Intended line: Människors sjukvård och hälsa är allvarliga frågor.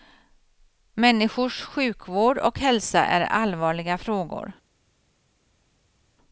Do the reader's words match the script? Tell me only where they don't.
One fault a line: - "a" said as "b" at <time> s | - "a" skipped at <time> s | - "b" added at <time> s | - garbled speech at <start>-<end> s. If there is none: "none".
none